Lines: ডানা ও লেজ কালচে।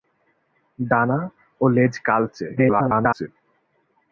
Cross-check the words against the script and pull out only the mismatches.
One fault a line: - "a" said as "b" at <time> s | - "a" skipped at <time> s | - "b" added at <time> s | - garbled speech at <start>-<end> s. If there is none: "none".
- garbled speech at 2.6-3.3 s